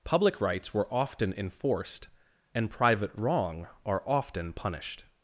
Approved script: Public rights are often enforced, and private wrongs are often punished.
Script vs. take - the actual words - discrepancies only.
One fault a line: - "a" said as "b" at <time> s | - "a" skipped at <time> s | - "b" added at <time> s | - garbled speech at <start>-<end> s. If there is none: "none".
- "are" said as "were" at 0.7 s
- "wrongs" said as "wrong" at 3.2 s